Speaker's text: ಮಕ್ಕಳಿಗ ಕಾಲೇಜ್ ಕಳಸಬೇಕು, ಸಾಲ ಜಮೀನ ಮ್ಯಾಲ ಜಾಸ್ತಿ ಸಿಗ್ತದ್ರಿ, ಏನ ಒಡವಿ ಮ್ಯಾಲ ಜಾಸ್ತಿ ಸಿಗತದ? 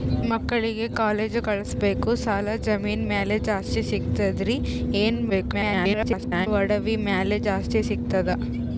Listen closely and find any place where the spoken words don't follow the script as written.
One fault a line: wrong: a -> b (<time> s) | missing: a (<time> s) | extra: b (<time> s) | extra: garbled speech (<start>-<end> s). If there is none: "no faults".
extra: garbled speech (5.3-6.5 s)